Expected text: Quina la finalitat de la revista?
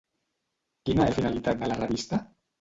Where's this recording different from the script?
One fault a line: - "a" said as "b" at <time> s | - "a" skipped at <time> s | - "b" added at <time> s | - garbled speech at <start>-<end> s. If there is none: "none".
none